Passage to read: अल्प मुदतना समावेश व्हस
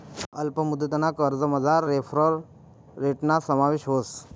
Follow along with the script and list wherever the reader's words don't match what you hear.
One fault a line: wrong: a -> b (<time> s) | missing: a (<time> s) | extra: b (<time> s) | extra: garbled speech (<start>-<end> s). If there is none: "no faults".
extra: कर्जमझार रेफरल रेटना (1.1 s)